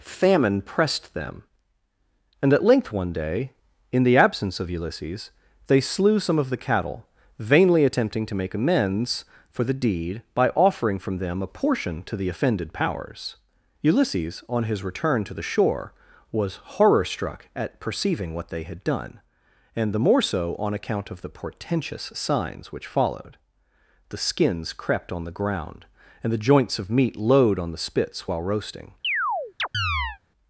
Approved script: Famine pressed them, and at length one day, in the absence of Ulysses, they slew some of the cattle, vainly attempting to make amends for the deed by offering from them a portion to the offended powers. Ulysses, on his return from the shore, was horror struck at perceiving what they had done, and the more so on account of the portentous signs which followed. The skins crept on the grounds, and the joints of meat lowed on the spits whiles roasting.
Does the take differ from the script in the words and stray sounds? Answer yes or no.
yes